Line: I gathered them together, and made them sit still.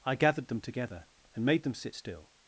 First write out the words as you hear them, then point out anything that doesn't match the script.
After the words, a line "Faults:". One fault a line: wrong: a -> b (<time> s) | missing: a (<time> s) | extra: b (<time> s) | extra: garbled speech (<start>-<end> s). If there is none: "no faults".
I gathered them together, and made them sit still.
Faults:
no faults